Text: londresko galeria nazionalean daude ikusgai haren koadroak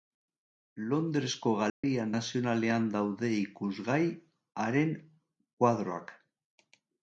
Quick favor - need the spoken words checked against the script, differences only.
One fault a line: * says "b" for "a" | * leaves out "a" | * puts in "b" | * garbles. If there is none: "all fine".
all fine